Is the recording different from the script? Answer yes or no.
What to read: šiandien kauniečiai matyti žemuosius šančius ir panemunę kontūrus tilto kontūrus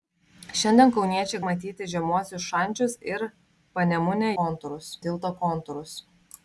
no